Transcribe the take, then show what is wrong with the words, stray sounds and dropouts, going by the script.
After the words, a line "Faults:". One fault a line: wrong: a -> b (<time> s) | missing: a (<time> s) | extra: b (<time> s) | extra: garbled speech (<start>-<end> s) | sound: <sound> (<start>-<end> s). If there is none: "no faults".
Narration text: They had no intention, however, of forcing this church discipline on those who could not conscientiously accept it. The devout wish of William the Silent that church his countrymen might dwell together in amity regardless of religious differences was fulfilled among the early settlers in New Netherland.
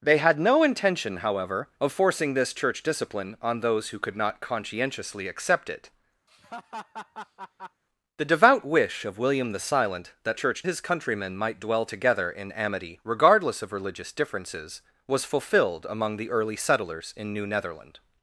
They had no intention, however, of forcing this church discipline on those who could not conscientiously accept it. The devout wish of William the Silent that church his countrymen might dwell together in amity regardless of religious differences was fulfilled among the early settlers in New Netherland.
Faults:
sound: laugh (6.3-7.8 s)